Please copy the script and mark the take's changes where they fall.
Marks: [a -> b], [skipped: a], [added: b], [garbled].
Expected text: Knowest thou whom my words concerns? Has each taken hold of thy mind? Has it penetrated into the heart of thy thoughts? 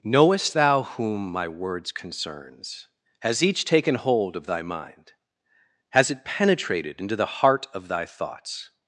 Knowest thou whom my words concerns? Has each taken hold of thy mind? Has it penetrated into the heart of thy thoughts?